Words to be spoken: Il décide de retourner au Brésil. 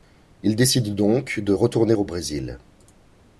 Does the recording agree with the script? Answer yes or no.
no